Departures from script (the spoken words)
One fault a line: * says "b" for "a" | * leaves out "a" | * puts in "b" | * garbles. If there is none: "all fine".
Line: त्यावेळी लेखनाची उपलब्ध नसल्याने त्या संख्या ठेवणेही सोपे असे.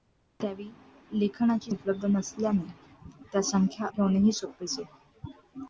all fine